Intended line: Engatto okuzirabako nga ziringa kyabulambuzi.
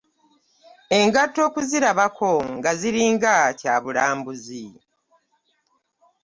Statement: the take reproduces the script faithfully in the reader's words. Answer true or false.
true